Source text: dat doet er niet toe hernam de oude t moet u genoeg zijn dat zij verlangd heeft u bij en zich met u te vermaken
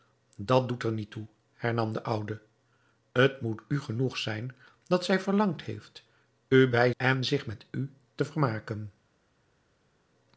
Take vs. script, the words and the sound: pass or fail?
pass